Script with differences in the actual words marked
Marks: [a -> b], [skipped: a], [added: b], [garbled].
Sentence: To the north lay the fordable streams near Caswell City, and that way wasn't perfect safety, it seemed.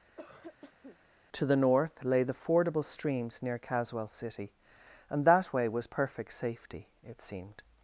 To the north lay the fordable streams near Caswell City, and that way [wasn't -> was] perfect safety, it seemed.